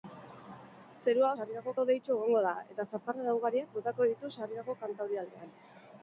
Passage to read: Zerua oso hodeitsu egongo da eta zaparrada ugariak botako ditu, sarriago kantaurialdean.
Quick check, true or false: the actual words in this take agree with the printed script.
false